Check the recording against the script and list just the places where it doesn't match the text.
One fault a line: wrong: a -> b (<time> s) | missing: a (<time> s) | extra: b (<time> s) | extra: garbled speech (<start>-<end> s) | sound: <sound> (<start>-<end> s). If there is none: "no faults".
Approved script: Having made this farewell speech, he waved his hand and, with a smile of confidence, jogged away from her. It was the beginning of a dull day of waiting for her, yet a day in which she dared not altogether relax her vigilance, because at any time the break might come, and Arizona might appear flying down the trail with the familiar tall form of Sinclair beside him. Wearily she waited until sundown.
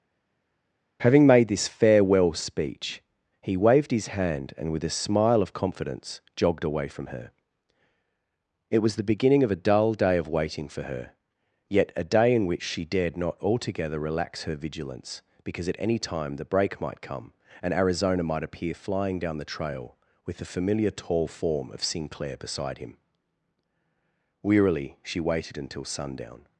no faults